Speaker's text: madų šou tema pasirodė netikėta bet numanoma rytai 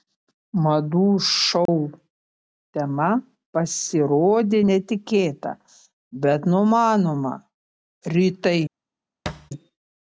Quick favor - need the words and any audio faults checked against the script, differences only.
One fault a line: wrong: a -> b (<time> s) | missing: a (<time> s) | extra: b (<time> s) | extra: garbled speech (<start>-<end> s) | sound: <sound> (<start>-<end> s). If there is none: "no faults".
sound: dropout (1.7-1.7 s)
sound: thud (9.3-9.5 s)